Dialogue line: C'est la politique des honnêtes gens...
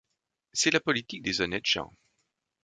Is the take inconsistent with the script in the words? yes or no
no